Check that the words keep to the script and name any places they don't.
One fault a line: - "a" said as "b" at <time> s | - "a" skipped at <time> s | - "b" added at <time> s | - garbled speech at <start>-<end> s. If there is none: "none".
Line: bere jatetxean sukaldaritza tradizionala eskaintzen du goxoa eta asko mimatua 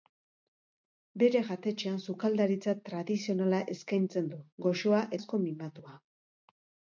- "eta" skipped at 5.1 s